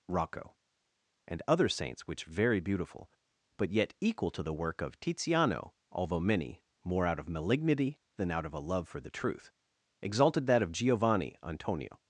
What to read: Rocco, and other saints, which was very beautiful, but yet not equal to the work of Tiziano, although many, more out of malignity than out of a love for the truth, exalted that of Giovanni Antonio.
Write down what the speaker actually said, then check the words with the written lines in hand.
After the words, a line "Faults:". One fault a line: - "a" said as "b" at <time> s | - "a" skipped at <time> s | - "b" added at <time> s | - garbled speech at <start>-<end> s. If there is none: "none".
Rocco, and other saints, which very beautiful, but yet equal to the work of Tiziano, although many, more out of malignity than out of a love for the truth, exalted that of Giovanni Antonio.
Faults:
- "was" skipped at 2.2 s
- "not" skipped at 3.9 s